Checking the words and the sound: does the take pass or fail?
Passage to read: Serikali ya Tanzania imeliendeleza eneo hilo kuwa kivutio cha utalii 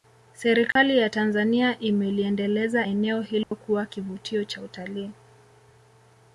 fail